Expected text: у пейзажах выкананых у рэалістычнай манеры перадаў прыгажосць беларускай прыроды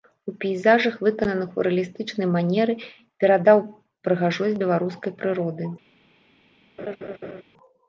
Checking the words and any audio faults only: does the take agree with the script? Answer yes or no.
no